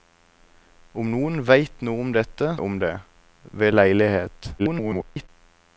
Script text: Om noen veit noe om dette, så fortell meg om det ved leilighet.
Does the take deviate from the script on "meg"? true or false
true